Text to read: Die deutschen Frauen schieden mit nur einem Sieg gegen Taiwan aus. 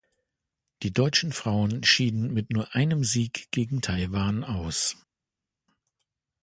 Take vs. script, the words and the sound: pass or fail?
pass